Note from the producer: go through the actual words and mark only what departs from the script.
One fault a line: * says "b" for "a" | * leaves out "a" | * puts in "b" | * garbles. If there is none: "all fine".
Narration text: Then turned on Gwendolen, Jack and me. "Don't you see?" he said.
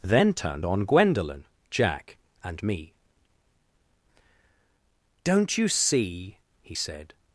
all fine